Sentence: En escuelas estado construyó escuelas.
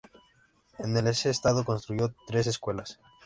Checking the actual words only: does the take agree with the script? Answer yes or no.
no